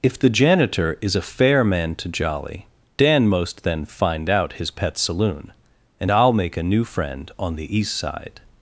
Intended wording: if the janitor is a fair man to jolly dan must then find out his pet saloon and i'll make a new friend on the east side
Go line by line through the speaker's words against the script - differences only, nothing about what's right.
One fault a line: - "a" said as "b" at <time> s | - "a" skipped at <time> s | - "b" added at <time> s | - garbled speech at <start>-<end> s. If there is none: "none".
- "must" said as "most" at 3.3 s